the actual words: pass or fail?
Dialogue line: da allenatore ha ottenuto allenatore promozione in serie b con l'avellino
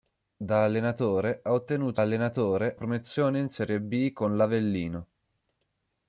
pass